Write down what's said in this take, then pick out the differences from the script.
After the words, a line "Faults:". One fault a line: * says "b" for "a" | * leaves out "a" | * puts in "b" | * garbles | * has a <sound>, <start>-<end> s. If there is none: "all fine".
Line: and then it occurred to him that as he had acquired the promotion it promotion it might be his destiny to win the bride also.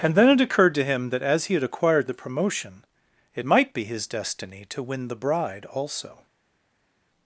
and then it occurred to him that as he had acquired the promotion it might be his destiny to win the bride also.
Faults:
* leaves out "promotion it"